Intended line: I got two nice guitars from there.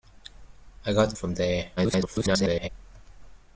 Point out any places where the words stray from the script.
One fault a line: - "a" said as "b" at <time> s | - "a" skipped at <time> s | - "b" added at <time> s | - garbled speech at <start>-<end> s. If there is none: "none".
- "two nice guitars" skipped at 1.1 s
- garbled speech at 1.8-2.7 s